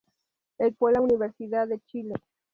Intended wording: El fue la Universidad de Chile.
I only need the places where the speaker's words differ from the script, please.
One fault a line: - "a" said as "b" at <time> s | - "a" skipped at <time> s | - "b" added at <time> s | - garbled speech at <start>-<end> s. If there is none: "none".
none